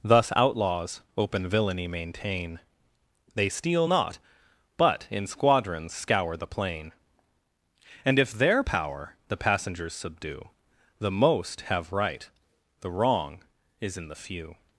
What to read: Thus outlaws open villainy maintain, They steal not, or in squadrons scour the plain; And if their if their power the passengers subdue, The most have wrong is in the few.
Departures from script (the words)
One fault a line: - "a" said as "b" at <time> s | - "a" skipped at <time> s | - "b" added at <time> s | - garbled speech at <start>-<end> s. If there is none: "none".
- "or" said as "but" at 4.8 s
- "if their" skipped at 8.6 s
- "right the" added at 11.9 s